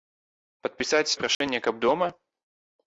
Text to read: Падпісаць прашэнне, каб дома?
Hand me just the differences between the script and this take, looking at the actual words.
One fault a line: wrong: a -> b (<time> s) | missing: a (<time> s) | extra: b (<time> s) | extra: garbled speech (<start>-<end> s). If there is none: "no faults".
no faults